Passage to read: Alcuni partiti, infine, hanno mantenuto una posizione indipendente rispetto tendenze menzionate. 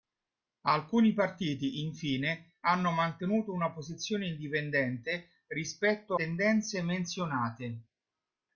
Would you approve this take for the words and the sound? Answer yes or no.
yes